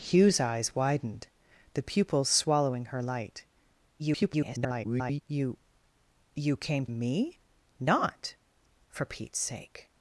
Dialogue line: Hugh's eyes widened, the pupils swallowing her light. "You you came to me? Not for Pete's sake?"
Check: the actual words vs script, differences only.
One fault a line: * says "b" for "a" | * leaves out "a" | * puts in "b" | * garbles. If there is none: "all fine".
* garbles
* leaves out "to"